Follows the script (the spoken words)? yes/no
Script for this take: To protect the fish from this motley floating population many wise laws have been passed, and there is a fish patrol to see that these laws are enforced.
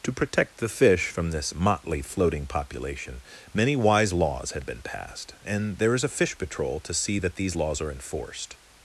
no